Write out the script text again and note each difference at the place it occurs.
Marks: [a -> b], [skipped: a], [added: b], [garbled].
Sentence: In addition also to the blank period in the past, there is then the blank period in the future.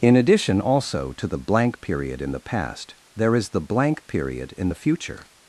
In addition also to the blank period in the past, there is [skipped: then] the blank period in the future.